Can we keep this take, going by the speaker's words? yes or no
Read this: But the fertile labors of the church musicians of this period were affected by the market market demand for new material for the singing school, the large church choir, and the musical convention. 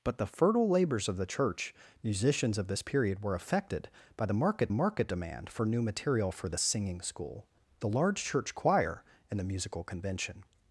yes